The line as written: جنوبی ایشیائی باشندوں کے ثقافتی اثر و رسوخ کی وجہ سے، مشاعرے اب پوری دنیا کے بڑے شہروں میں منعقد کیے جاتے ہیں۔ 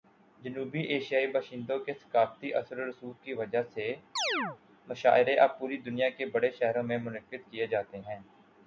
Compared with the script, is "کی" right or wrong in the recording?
right